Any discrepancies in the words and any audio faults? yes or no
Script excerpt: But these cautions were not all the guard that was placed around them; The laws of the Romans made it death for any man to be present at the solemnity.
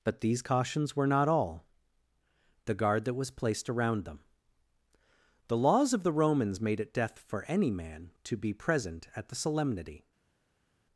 no